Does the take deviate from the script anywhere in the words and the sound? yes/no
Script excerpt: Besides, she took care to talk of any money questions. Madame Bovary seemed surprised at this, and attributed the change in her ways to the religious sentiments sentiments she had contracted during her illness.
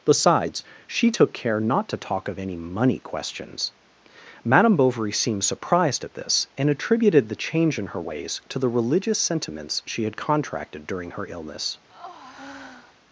yes